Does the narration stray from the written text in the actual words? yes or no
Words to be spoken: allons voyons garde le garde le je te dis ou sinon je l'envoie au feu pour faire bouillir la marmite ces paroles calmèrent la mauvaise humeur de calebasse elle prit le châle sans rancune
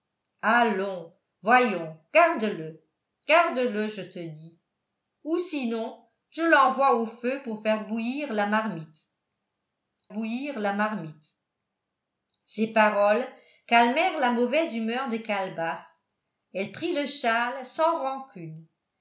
yes